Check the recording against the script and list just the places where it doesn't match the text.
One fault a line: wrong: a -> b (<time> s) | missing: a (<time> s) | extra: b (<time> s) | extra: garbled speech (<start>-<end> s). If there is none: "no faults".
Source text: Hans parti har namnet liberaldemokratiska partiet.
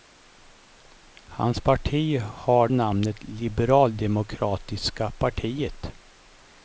no faults